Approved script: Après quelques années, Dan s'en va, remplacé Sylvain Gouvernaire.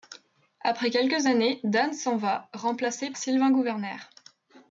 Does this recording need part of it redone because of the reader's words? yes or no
no